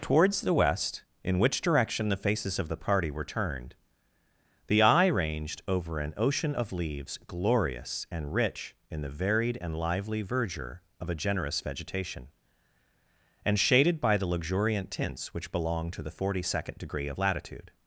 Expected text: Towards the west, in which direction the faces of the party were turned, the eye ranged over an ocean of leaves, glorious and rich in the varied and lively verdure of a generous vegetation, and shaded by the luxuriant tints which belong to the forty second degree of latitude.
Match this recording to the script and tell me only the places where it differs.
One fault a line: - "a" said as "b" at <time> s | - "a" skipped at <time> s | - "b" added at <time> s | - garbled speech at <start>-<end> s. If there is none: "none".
none